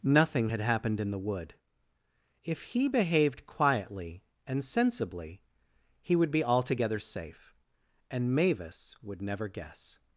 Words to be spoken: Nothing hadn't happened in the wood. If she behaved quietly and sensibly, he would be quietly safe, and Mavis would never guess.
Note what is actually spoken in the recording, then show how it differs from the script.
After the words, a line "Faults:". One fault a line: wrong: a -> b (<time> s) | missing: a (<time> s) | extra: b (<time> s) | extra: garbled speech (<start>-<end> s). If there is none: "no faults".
Nothing had happened in the wood. If he behaved quietly and sensibly, he would be altogether safe, and Mavis would never guess.
Faults:
wrong: hadn't -> had (0.5 s)
wrong: she -> he (2.6 s)
wrong: quietly -> altogether (6.4 s)